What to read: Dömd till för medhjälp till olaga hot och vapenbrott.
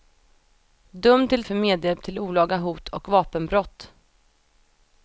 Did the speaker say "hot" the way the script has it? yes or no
yes